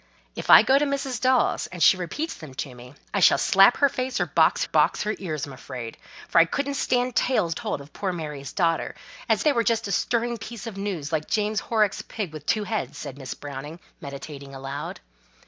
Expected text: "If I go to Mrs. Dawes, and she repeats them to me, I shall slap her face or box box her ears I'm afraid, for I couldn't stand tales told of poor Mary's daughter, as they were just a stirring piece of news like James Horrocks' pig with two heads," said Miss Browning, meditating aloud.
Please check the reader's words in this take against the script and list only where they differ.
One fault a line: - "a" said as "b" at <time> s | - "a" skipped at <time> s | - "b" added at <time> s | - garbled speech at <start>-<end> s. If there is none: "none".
none